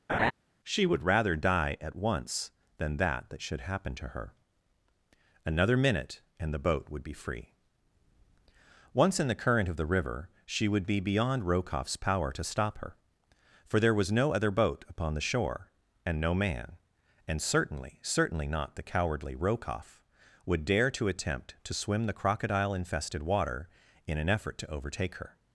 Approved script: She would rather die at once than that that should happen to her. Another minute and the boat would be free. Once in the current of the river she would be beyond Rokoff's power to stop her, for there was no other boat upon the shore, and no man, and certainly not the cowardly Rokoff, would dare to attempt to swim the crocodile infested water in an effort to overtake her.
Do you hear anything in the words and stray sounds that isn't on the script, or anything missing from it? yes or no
yes